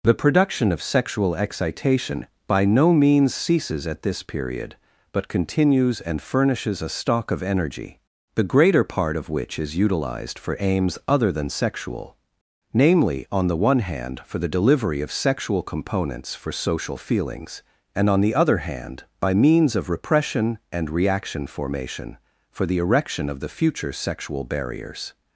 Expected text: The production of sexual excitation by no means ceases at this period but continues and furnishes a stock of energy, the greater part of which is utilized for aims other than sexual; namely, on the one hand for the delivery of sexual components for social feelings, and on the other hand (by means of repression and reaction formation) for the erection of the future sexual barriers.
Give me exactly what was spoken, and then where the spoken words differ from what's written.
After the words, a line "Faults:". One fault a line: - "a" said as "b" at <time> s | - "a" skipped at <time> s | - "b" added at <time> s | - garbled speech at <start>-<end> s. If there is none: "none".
The production of sexual excitation by no means ceases at this period but continues and furnishes a stock of energy, the greater part of which is utilized for aims other than sexual; namely, on the one hand for the delivery of sexual components for social feelings, and on the other hand (by means of repression and reaction formation) for the erection of the future sexual barriers.
Faults:
none